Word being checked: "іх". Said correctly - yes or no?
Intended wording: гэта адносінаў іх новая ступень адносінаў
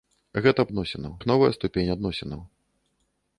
yes